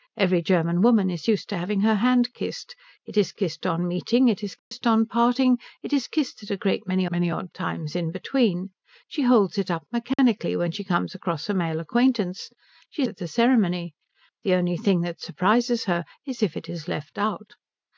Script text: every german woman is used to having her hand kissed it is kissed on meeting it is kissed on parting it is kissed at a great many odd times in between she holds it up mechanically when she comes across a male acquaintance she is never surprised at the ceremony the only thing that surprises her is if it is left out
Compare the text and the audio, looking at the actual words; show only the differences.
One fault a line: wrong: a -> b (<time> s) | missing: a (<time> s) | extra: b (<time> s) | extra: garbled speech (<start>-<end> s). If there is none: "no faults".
extra: many (7.1 s)
missing: is never surprised (13.0 s)